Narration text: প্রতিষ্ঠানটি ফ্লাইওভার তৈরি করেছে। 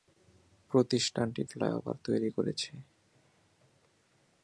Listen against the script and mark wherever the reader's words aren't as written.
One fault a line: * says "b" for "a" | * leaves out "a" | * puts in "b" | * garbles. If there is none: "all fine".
all fine